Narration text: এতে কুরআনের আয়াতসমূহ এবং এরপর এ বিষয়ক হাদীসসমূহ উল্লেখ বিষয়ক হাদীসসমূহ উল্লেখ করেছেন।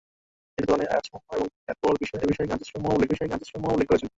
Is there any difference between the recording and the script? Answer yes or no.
no